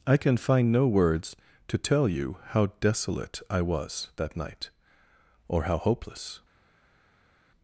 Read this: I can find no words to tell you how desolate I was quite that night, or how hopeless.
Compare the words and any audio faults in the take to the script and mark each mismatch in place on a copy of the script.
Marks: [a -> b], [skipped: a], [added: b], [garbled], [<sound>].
I can find no words to tell you how desolate I was [skipped: quite] that night, or how hopeless.